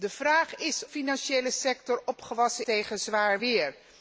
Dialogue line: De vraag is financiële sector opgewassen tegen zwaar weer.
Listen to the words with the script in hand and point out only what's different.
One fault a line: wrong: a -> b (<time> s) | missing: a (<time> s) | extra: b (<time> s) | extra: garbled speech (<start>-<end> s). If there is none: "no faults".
no faults